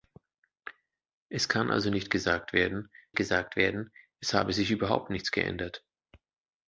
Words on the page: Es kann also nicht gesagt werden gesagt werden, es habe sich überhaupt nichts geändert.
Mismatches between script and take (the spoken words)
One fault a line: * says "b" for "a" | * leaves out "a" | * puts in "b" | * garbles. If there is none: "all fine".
all fine